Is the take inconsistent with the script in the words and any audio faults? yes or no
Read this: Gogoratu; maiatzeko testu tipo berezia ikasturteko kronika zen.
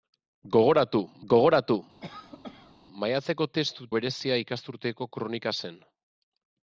yes